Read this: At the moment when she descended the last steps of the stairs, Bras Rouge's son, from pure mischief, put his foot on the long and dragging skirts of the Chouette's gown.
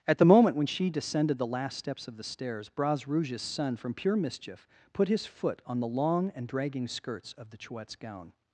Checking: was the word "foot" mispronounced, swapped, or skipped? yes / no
no